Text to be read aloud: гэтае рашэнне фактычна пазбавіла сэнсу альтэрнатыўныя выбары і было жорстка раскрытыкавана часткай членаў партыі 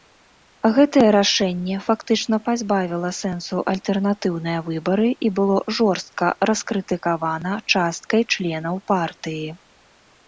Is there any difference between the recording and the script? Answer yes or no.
no